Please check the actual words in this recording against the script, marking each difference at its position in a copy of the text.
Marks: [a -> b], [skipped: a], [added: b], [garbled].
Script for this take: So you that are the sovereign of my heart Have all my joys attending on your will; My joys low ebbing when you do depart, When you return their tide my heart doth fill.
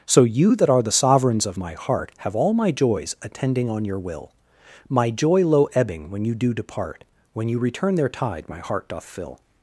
So you that are the [sovereign -> sovereigns] of my heart Have all my joys attending on your will; My [joys -> joy] low ebbing when you do depart, When you return their tide my heart doth fill.